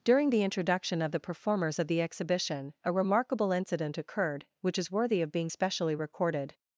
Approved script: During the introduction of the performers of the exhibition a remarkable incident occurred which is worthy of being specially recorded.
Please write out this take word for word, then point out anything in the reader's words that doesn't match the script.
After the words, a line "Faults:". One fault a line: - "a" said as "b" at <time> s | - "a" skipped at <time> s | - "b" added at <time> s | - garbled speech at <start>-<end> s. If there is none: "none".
During the introduction of the performers of the exhibition a remarkable incident occurred which is worthy of being specially recorded.
Faults:
none